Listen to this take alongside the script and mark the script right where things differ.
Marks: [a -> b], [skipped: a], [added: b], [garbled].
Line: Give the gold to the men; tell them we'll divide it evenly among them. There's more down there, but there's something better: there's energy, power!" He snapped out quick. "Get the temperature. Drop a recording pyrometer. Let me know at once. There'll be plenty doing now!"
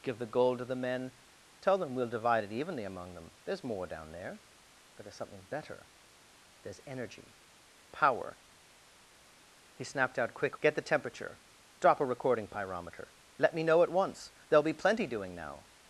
Give the gold to the men; tell them we'll divide it evenly among them. There's more down there, but there's something better: there's energy, power!" He snapped out quick. "Get the temperature. Drop a recording pyrometer. Let me know at once. There'll be plenty doing now!"